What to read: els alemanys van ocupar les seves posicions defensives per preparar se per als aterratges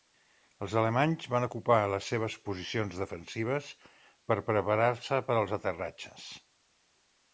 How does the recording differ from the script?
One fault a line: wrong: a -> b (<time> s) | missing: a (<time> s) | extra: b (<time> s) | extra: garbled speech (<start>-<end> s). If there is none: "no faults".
no faults